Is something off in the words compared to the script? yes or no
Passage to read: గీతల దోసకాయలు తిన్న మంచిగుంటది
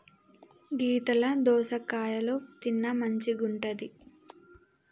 no